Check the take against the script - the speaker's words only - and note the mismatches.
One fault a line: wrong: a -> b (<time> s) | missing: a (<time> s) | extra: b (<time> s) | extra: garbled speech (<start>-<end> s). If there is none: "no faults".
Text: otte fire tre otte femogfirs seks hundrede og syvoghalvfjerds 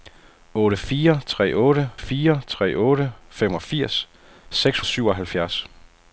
extra: fire tre otte (2.0 s)
missing: hundrede (4.8 s)